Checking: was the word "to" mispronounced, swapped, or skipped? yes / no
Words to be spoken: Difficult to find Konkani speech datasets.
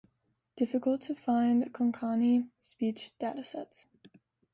no